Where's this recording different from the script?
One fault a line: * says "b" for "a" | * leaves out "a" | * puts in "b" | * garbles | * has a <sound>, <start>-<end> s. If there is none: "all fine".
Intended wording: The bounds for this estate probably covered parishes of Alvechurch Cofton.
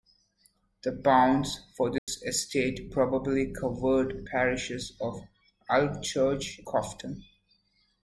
* has a dropout, 2.0-2.1 s